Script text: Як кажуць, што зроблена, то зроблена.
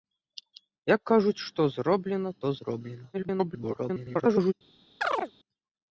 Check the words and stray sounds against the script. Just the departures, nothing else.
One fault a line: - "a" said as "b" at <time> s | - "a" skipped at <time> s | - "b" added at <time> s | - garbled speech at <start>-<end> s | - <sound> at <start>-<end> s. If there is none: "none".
- garbled speech at 3.1-4.5 s
- chirp at 5.0-5.3 s